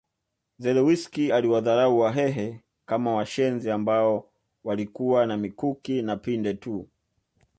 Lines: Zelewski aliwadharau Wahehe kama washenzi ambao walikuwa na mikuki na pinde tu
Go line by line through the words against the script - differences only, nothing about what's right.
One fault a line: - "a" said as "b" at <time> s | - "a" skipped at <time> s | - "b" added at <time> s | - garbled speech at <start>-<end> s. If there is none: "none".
none